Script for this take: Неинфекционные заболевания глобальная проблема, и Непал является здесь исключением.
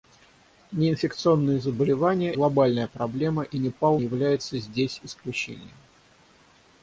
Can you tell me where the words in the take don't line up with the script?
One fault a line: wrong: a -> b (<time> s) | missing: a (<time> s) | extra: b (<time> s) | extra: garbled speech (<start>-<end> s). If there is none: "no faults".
no faults